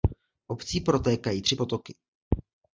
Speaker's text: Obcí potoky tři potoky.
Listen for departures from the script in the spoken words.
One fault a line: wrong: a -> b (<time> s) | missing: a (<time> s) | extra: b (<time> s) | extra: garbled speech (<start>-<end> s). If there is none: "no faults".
wrong: potoky -> protékají (0.8 s)